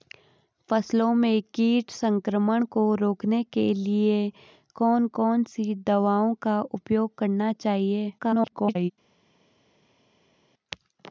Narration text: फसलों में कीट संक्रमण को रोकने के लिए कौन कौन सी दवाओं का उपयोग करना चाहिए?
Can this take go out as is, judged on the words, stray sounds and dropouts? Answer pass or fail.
fail